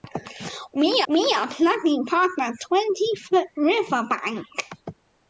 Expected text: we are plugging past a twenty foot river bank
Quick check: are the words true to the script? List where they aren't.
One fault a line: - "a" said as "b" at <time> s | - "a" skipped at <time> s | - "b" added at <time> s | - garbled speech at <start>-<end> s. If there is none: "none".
- "we" added at 1.1 s